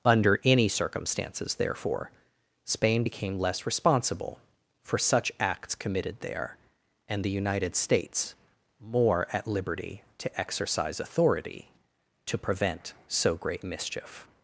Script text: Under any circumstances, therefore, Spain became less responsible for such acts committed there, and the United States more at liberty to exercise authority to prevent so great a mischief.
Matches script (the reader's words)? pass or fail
fail